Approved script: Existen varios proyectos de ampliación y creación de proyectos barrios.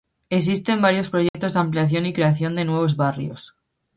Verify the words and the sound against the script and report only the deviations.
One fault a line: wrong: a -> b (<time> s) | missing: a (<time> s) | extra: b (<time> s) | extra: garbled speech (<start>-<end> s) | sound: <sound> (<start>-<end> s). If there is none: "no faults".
sound: dropout (1.3-1.3 s)
wrong: proyectos -> nuevos (2.6 s)